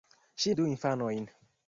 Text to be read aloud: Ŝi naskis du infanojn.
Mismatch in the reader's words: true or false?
true